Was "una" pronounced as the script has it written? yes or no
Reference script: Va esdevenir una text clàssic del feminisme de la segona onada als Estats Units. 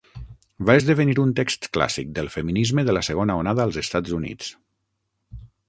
no